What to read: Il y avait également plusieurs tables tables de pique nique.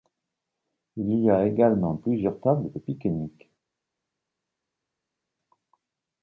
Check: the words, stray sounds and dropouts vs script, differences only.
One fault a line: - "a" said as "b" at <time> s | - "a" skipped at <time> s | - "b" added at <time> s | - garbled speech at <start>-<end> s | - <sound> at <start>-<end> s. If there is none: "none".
- "avait" said as "a" at 1.3 s
- "tables" skipped at 2.7 s